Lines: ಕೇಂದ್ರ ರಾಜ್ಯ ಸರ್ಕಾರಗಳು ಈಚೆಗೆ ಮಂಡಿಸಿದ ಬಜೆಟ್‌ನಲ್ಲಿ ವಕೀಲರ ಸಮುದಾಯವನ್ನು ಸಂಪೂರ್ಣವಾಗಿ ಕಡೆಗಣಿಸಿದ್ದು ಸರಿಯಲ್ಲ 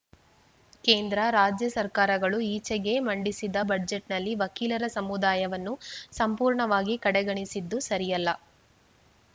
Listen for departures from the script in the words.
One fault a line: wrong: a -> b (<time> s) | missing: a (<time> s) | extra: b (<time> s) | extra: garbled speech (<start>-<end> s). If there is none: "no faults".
no faults